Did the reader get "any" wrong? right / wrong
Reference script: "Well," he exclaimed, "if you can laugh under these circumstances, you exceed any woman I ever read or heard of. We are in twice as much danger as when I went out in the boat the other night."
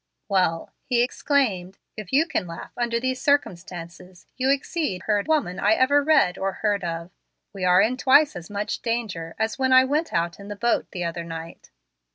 wrong